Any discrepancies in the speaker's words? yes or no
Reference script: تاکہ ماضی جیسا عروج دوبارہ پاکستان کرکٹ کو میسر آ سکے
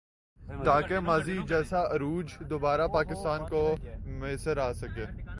yes